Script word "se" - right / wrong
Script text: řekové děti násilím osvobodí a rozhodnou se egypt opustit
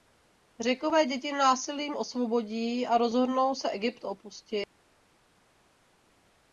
right